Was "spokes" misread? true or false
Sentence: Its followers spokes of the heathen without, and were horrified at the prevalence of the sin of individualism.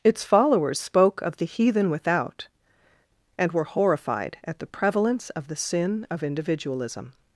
true